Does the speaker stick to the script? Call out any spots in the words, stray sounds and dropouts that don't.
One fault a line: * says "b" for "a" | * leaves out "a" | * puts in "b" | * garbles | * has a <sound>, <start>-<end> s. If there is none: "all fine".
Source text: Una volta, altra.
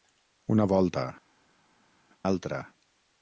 all fine